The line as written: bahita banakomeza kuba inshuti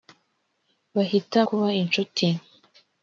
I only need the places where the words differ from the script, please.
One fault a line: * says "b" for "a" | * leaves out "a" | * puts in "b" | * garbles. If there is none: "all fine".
* leaves out "banakomeza"